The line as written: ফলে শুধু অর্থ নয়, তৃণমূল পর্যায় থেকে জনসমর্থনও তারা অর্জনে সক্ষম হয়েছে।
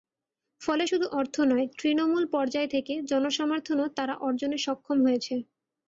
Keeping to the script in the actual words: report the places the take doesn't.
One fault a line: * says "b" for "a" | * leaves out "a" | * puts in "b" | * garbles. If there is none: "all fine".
all fine